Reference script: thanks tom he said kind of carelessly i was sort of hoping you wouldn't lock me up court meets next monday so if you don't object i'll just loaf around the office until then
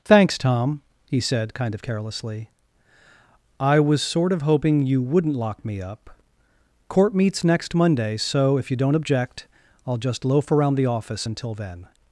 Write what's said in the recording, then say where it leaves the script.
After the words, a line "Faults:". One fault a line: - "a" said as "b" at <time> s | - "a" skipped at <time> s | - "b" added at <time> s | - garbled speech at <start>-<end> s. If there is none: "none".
thanks tom he said kind of carelessly i was sort of hoping you wouldn't lock me up court meets next monday so if you don't object i'll just loaf around the office until then
Faults:
none